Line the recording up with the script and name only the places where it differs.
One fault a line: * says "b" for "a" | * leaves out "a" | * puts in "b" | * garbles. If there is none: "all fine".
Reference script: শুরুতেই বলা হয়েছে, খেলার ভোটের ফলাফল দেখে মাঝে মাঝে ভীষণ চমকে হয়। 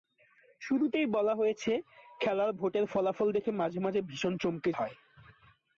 all fine